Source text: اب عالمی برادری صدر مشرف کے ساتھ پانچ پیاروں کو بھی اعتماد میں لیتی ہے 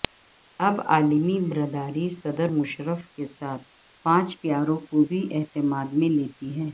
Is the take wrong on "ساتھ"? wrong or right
right